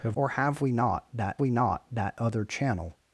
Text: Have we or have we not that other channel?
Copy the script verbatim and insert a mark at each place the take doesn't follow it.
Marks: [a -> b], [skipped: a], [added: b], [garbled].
Have [added: or have] we [or have -> not that] we not that other channel?